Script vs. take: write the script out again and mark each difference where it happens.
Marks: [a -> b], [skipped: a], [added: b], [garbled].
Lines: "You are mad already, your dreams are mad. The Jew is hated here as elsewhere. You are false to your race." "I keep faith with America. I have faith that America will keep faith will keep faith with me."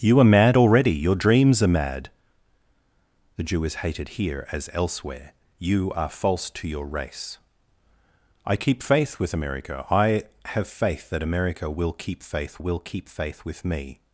"You are mad already, your dreams are mad. The Jew is hated here as elsewhere. You are false to your race." "I keep faith with America. I have faith that America will keep faith will keep faith with me."